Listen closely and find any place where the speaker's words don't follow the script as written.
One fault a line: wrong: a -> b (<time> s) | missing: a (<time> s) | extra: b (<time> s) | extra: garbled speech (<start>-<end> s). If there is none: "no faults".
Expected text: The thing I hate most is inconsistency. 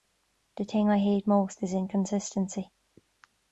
no faults